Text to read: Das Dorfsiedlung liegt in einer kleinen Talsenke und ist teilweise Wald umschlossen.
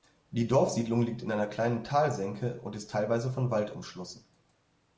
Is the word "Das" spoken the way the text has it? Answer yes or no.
no